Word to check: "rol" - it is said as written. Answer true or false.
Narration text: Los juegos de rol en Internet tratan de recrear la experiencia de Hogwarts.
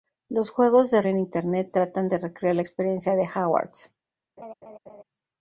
false